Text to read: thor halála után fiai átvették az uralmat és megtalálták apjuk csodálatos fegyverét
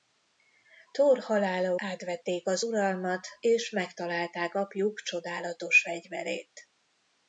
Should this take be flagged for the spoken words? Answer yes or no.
yes